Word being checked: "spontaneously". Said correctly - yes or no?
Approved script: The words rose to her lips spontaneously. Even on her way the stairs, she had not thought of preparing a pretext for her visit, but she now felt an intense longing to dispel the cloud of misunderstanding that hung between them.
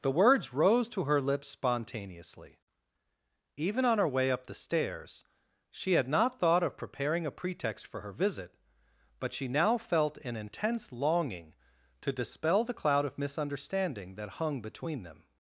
yes